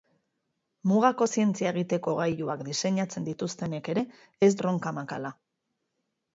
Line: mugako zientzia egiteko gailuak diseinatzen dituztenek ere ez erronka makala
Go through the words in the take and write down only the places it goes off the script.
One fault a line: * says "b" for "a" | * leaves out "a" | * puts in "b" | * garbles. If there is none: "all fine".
all fine